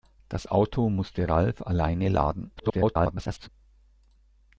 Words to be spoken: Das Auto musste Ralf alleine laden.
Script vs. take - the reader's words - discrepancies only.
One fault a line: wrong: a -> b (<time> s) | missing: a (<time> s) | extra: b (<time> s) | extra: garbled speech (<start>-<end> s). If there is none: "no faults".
extra: garbled speech (2.6-3.5 s)